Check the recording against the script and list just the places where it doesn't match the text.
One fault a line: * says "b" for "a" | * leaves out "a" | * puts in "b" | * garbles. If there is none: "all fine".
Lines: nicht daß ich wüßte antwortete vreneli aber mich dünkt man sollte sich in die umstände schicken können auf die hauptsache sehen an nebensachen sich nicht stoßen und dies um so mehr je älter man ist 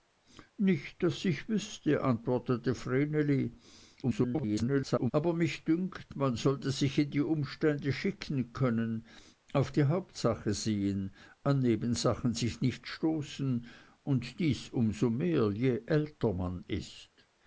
* garbles